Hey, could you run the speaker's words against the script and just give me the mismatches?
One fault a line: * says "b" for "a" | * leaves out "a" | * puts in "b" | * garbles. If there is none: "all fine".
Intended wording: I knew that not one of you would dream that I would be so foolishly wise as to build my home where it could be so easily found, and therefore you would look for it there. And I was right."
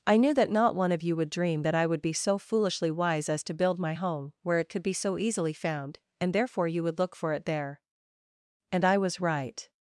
all fine